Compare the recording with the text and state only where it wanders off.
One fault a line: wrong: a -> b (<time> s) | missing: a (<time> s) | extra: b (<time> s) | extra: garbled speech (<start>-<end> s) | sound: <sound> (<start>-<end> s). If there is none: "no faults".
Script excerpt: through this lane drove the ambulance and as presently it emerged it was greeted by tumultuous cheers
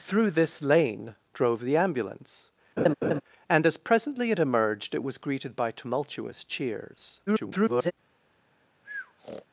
sound: laugh (2.8-3.2 s)
extra: garbled speech (7.3-7.9 s)
sound: breath (8.8-9.5 s)